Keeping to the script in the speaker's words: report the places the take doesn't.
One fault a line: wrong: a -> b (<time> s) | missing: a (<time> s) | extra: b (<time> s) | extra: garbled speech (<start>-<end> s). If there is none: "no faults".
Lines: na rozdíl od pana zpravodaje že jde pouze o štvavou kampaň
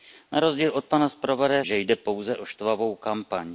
no faults